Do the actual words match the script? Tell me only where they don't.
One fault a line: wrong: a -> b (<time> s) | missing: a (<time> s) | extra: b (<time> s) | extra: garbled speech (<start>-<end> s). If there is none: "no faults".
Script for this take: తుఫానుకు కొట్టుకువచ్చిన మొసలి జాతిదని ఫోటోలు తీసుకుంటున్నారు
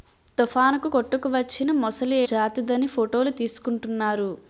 no faults